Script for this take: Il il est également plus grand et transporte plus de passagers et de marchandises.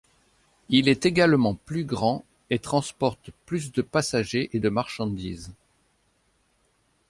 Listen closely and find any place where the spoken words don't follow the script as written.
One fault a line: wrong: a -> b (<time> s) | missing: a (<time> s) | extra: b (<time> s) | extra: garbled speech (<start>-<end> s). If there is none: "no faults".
missing: il (0.9 s)